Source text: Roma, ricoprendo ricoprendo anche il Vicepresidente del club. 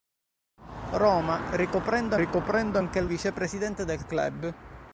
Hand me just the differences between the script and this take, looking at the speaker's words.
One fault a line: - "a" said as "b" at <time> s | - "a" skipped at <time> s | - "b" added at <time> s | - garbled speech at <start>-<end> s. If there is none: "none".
none